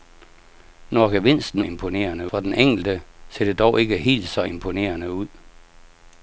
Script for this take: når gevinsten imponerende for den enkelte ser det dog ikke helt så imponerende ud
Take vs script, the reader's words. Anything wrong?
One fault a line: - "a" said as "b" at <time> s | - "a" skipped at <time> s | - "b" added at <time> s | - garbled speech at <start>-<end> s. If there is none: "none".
none